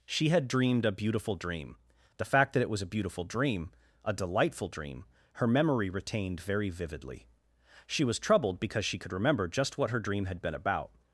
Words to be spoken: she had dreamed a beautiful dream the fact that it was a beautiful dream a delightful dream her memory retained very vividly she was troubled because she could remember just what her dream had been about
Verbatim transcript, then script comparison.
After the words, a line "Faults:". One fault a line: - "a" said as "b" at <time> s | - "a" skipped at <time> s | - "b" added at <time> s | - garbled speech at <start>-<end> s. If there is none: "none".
she had dreamed a beautiful dream the fact that it was a beautiful dream a delightful dream her memory retained very vividly she was troubled because she could remember just what her dream had been about
Faults:
none